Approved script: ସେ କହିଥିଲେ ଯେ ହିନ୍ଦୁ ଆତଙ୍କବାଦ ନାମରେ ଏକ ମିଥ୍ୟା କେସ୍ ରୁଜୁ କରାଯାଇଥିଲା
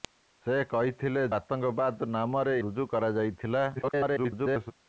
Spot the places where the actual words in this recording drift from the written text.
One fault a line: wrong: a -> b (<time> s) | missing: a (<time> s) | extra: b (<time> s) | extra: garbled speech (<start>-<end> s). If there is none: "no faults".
missing: ଯେ ହିନ୍ଦୁ (1.2 s)
missing: ଏକ ମିଥ୍ୟା କେସ୍ (2.6 s)
extra: garbled speech (3.8-4.7 s)